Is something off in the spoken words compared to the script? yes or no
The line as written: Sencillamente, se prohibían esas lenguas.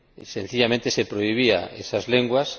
no